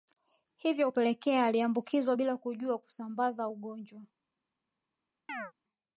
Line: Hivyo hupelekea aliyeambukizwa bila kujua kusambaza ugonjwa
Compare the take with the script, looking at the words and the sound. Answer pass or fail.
fail